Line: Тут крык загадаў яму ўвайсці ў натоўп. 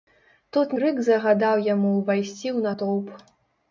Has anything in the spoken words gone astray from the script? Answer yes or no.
no